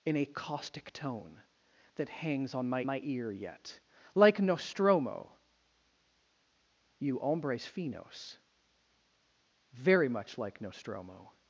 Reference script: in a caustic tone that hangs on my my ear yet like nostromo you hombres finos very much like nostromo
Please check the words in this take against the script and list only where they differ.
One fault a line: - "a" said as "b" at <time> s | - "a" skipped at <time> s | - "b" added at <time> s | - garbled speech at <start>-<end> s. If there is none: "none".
none